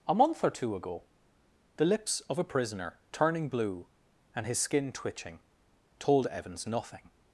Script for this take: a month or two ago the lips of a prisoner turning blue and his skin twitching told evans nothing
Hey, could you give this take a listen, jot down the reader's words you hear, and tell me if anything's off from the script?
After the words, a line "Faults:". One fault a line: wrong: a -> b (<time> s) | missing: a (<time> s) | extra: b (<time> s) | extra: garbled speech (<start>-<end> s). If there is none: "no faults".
a month or two ago the lips of a prisoner turning blue and his skin twitching told evans nothing
Faults:
no faults